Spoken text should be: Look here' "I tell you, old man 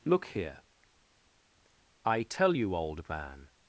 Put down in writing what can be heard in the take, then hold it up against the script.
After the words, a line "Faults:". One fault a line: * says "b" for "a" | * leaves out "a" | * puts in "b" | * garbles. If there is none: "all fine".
Look here' "I tell you, old man
Faults:
all fine